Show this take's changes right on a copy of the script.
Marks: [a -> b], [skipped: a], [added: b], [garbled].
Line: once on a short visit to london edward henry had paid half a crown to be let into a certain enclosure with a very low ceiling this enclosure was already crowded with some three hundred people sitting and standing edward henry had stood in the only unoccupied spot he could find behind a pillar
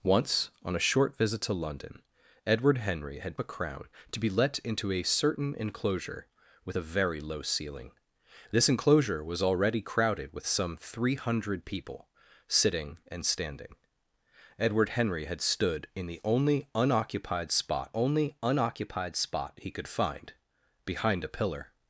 once on a short visit to london edward henry had [skipped: paid half] a crown to be let into a certain enclosure with a very low ceiling this enclosure was already crowded with some three hundred people sitting and standing edward henry had stood in the only unoccupied spot [added: only unoccupied spot] he could find behind a pillar